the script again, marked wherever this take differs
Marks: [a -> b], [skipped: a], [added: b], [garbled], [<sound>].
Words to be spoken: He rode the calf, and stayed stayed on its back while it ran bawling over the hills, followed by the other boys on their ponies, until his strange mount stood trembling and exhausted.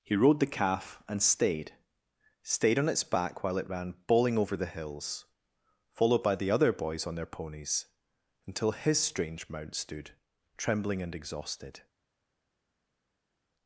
He rode the calf, and stayed stayed on its back while it ran bawling over the hills, followed by the other boys on their ponies, until his strange mount stood trembling and exhausted.